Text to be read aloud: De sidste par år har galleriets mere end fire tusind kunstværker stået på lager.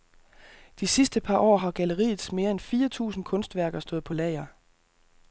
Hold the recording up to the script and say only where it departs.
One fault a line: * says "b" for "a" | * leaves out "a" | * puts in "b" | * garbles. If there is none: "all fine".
all fine